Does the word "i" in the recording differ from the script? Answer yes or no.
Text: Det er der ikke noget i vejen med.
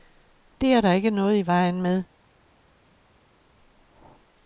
no